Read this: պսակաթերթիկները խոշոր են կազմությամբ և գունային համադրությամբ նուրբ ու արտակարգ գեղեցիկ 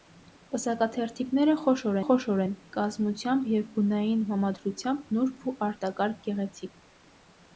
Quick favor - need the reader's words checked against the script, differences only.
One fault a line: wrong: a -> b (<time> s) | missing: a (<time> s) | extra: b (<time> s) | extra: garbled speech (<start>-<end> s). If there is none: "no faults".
extra: խոշոր (2.1 s)